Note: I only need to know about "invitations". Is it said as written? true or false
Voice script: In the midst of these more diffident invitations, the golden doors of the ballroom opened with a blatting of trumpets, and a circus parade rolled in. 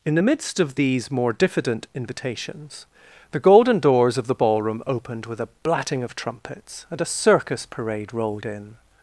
true